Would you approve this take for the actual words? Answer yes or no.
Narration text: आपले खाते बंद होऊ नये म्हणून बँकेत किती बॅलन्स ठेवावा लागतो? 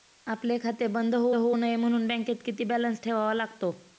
no